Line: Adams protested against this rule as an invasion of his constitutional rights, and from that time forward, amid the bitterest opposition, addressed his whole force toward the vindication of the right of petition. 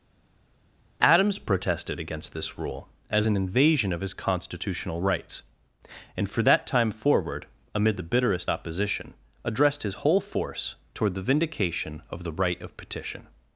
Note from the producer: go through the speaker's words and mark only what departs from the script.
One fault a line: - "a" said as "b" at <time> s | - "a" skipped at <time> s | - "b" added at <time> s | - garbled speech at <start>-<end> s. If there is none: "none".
- "from" said as "for" at 6.3 s